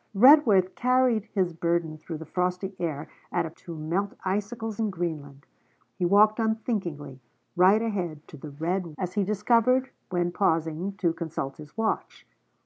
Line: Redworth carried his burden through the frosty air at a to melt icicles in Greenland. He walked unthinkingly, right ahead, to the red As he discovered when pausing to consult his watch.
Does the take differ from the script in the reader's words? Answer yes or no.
no